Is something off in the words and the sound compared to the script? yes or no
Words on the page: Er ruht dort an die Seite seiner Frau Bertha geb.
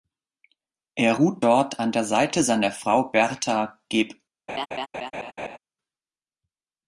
yes